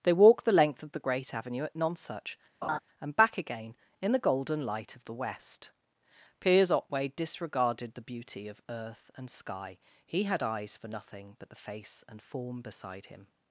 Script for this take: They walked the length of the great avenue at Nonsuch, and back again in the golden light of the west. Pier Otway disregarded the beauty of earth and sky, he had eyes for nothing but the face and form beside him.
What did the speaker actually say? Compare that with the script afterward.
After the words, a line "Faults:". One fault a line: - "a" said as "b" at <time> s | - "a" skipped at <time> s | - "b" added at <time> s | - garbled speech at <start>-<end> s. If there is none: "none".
They walked the length of the great avenue at Nonsuch, and back again in the golden light of the west. Piers Otway disregarded the beauty of earth and sky, he had eyes for nothing but the face and form beside him.
Faults:
- "Pier" said as "Piers" at 6.4 s